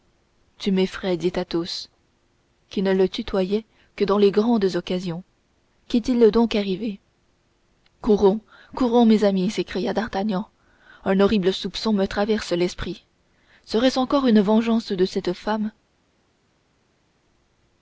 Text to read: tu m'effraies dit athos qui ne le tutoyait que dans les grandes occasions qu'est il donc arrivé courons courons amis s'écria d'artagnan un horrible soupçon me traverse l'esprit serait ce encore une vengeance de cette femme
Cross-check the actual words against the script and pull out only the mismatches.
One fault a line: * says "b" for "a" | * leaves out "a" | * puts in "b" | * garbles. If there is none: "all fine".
* puts in "mes"